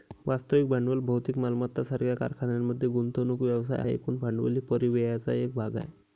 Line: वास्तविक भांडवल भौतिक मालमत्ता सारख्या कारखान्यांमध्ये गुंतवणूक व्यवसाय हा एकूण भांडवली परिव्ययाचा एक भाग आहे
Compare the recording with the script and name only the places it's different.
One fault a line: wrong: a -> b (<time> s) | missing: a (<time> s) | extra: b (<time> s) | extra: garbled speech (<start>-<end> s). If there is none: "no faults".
missing: हा (3.8 s)